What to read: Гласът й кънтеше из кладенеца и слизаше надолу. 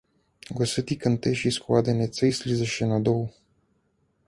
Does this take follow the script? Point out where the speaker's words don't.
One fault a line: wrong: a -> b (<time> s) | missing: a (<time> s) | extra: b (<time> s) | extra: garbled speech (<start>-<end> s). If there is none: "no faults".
no faults